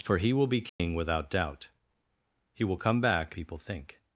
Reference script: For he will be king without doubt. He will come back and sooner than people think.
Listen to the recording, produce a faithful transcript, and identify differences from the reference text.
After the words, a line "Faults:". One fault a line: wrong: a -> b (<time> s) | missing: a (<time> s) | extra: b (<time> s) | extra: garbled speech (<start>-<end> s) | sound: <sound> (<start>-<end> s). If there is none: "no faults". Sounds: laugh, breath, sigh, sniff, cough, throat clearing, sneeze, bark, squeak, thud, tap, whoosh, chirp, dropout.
For he will be king without doubt. He will come back people think.
Faults:
sound: dropout (0.7-0.8 s)
missing: and sooner than (3.4 s)